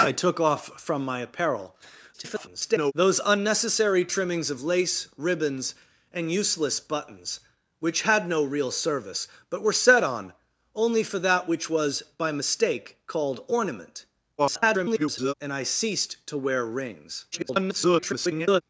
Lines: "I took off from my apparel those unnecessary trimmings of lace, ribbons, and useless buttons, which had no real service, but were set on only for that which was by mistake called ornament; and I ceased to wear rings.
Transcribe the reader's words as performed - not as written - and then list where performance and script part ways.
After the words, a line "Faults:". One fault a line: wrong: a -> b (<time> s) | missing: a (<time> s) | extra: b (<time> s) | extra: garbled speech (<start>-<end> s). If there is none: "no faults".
"I took off from my apparel [garbled] those unnecessary trimmings of lace, ribbons, and useless buttons, which had no real service, but were set on only for that which was by mistake called ornament; [garbled] and I ceased to wear rings. [garbled]
Faults:
extra: garbled speech (2.1-2.9 s)
extra: garbled speech (14.4-15.3 s)
extra: garbled speech (17.3-18.6 s)